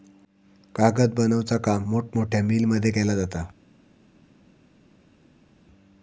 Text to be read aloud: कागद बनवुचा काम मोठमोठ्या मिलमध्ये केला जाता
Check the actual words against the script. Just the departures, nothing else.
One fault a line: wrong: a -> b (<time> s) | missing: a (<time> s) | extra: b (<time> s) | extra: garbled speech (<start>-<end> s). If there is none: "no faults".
no faults